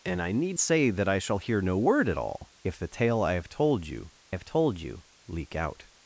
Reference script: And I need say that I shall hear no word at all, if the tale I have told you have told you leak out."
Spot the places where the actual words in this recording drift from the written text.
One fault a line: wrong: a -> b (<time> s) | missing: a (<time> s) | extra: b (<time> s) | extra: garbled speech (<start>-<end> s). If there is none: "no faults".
no faults